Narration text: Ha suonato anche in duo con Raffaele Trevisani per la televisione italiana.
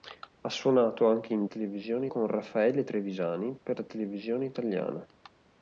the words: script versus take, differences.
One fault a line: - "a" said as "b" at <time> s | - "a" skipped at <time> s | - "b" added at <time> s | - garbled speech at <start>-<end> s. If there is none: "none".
- "duo" said as "televisione" at 1.4 s